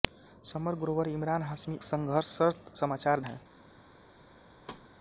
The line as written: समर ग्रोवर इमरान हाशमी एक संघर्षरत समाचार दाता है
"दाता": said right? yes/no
no